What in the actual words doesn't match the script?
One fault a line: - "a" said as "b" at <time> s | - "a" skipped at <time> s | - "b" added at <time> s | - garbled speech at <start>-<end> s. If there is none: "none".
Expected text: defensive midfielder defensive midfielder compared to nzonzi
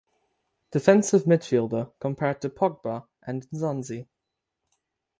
- "defensive midfielder compared to" said as "compared to pogba and" at 2.0 s